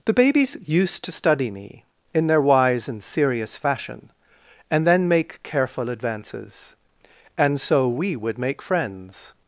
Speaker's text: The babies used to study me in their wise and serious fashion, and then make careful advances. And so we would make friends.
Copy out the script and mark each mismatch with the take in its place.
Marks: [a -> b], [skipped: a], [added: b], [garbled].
The babies used to study me in their wise and serious fashion, and then make careful advances. And so we would make friends.